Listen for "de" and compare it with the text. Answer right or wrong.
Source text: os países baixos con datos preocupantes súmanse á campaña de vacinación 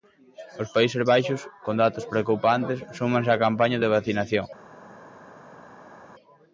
right